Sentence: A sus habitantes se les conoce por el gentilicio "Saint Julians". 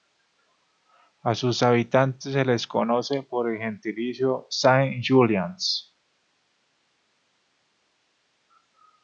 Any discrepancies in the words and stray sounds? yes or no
no